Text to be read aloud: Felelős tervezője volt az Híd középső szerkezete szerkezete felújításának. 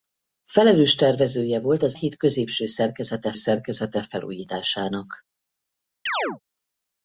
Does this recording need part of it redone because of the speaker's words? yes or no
no